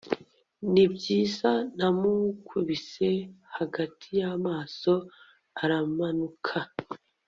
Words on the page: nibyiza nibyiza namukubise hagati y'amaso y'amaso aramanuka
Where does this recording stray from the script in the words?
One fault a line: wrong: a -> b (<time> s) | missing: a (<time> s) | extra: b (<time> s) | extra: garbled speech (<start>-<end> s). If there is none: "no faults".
missing: nibyiza (1.5 s)
missing: y'amaso (4.9 s)